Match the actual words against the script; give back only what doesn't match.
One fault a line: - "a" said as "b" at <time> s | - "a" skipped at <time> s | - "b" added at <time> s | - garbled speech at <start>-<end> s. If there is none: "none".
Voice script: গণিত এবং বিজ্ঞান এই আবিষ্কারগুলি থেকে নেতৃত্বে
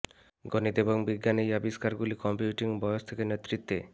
- "কম্পিউটিং বয়স" added at 2.2 s